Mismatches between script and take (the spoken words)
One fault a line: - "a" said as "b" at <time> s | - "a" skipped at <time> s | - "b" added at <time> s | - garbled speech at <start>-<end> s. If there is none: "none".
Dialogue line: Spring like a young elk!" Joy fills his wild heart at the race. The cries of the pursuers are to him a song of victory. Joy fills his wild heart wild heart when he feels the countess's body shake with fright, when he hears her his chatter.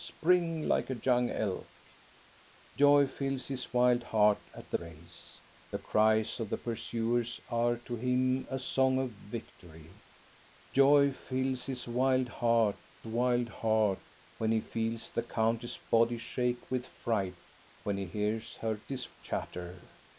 none